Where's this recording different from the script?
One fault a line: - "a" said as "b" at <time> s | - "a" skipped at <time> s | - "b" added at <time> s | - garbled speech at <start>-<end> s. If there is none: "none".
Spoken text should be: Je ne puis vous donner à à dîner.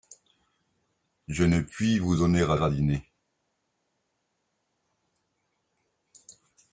none